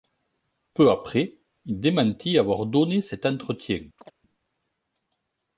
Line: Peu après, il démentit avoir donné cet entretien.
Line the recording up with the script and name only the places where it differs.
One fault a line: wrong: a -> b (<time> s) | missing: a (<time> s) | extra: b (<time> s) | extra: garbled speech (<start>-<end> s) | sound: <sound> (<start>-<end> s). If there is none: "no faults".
sound: chirp (4.0-4.1 s)